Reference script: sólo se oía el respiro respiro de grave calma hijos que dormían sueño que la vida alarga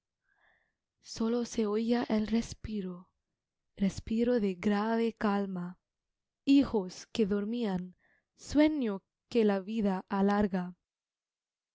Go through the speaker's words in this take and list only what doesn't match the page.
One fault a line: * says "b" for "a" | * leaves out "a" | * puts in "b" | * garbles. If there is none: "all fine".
all fine